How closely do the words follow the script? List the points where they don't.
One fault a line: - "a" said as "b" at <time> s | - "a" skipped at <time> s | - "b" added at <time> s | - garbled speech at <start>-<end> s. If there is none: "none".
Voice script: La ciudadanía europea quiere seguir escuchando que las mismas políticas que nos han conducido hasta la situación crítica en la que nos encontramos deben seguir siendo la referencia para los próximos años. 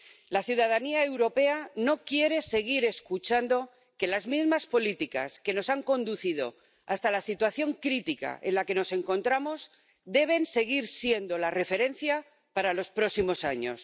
- "no" added at 1.8 s